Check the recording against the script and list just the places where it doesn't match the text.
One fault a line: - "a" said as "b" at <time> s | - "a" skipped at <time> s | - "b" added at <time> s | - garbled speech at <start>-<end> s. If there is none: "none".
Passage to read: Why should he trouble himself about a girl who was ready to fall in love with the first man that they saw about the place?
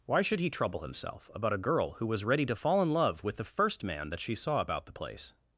- "they" said as "she" at 4.2 s